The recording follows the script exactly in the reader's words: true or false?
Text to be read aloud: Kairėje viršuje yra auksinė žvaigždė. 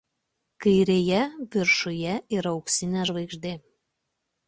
true